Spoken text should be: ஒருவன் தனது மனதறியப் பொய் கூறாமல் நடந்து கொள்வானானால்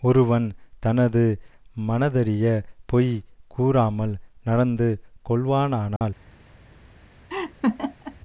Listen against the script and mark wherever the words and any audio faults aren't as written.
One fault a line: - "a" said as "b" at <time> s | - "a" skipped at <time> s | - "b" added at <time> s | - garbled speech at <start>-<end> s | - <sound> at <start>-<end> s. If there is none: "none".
- dropout at 6.0-6.0 s
- laugh at 7.3-8.2 s